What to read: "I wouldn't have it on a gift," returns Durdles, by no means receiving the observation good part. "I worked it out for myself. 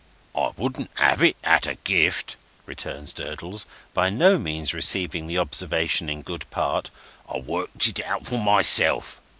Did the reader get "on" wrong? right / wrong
wrong